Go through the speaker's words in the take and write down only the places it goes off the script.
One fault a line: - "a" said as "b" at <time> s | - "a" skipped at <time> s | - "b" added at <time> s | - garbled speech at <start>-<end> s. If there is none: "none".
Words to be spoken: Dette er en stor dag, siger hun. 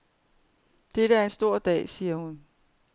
none